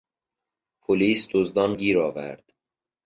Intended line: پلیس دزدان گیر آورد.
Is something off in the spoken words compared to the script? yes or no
no